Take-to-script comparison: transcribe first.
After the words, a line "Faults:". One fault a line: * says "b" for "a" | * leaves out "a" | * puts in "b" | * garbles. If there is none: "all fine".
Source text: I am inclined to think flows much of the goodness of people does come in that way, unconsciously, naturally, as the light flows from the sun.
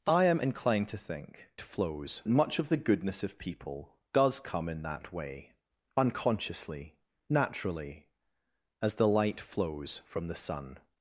I am inclined to think flows much of the goodness of people does come in that way, unconsciously, naturally, as the light flows from the sun.
Faults:
all fine